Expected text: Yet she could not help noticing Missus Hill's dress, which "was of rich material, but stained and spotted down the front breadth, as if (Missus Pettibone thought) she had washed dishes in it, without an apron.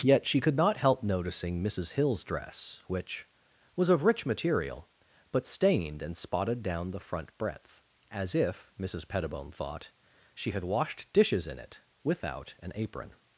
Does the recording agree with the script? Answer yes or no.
yes